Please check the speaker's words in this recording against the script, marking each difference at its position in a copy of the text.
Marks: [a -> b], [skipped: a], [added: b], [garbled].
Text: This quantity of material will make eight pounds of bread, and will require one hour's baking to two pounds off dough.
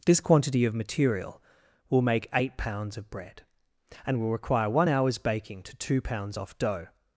This quantity of material will make eight pounds of bread, and will require one hour's baking to two pounds off dough.